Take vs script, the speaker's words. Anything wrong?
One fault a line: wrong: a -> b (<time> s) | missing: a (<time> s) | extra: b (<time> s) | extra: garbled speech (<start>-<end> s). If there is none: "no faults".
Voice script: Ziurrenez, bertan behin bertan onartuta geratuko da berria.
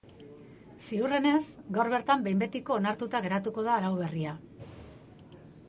extra: gaur (1.8 s)
wrong: bertan -> betiko (2.5 s)
extra: arau (3.8 s)